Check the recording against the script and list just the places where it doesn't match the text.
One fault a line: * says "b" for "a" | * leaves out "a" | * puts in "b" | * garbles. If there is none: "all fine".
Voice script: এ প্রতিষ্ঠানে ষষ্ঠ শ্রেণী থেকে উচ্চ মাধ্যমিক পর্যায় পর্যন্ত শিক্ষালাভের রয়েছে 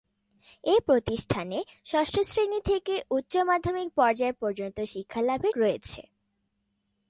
all fine